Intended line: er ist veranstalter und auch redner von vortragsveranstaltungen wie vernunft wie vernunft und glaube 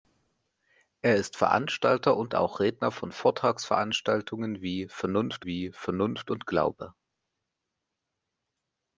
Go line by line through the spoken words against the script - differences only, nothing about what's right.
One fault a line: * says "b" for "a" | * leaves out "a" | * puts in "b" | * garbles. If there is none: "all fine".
all fine